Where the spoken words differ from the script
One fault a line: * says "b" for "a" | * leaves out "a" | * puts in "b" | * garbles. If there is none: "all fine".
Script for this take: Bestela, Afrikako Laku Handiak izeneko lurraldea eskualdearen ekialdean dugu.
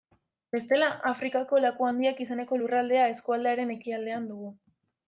all fine